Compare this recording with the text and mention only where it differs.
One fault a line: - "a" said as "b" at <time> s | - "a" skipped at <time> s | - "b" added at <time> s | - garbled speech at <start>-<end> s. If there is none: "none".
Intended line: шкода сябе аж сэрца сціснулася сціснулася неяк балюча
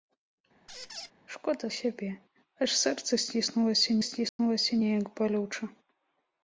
none